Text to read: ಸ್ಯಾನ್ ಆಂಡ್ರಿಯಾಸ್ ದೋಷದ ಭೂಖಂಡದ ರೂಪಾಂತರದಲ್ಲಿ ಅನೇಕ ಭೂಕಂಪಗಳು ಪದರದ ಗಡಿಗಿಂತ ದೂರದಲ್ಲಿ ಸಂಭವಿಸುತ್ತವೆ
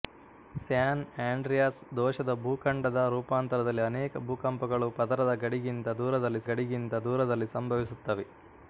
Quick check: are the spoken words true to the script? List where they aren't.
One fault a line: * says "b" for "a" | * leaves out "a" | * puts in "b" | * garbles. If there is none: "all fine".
* puts in "ಗಡಿಗಿಂತ ದೂರದಲ್ಲಿ"